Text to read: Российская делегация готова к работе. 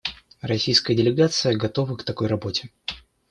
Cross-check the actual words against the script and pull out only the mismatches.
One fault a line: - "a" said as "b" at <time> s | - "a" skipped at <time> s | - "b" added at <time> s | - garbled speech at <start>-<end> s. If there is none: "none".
- "такой" added at 2.0 s